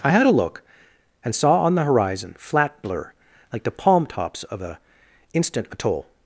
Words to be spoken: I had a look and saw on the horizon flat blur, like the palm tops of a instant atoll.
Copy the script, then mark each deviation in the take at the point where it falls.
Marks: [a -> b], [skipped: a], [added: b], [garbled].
I had a look and saw on the horizon flat blur, like the palm tops of a instant atoll.